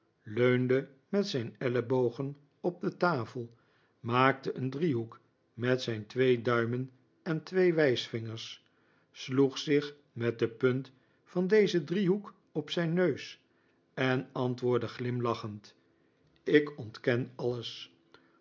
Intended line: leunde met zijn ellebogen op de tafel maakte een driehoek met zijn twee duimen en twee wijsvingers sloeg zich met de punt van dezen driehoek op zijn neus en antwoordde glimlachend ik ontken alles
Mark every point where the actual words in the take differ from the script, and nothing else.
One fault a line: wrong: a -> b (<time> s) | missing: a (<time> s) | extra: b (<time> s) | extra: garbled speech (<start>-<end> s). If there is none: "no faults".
no faults